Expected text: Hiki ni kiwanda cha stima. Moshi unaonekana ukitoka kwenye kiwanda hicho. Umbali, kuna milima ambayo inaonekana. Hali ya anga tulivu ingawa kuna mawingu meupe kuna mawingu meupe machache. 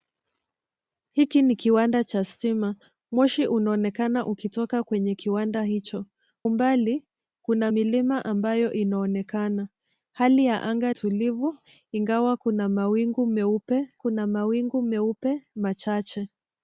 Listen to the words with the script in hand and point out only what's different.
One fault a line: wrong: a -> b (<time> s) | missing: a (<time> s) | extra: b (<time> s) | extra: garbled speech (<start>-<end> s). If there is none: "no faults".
no faults